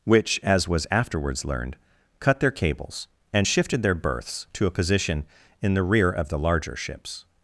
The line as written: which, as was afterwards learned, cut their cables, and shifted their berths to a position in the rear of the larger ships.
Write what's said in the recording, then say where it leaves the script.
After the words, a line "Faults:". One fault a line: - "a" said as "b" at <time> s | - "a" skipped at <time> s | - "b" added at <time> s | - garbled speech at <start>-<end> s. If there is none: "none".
which, as was afterwards learned, cut their cables, and shifted their berths to a position in the rear of the larger ships.
Faults:
none